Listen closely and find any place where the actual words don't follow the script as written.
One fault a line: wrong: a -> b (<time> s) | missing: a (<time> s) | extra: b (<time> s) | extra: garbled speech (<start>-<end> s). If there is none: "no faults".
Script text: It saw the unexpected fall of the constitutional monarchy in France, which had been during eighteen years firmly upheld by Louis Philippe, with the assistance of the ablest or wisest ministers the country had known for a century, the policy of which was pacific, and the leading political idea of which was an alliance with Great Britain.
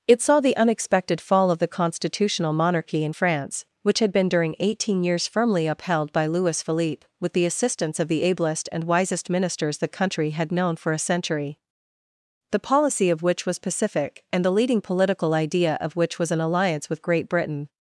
wrong: or -> and (8.7 s)